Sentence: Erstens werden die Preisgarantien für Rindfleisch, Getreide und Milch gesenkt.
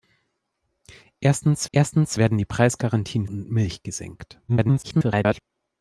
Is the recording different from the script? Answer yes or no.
yes